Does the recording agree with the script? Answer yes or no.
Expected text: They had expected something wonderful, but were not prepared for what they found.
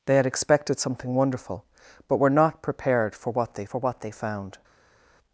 no